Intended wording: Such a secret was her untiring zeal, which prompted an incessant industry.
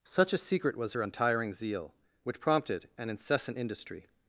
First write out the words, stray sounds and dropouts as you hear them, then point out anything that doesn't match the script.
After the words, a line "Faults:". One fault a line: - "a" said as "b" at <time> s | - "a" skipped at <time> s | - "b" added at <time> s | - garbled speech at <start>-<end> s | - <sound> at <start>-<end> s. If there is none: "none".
Such a secret was her untiring zeal, which prompted an incessant industry.
Faults:
none